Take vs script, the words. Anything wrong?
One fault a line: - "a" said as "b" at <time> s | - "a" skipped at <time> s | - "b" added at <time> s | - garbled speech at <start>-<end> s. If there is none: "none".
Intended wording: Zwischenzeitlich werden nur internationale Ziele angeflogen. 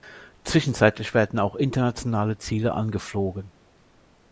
- "nur" said as "auch" at 1.4 s